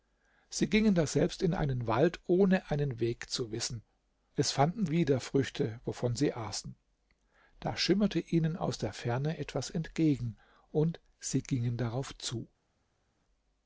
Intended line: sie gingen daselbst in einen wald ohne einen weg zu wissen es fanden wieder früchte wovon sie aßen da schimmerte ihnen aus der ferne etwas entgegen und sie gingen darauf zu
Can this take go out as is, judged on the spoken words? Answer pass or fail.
pass